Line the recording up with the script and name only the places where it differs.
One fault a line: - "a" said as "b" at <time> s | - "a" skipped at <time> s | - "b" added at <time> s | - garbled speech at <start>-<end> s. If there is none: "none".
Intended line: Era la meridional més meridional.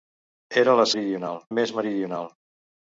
none